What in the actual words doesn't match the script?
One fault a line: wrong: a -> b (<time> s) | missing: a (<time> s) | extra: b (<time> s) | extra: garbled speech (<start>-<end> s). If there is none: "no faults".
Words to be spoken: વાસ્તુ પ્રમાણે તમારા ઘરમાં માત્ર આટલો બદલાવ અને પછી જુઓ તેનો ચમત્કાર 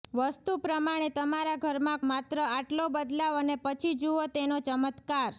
no faults